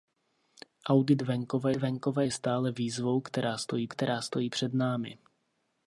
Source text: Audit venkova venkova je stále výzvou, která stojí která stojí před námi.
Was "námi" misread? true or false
false